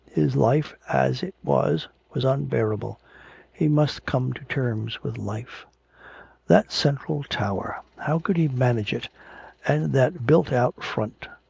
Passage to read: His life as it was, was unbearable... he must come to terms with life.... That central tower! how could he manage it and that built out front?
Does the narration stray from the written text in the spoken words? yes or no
no